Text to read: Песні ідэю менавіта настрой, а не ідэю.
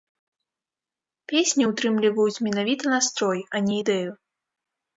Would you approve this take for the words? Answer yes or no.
no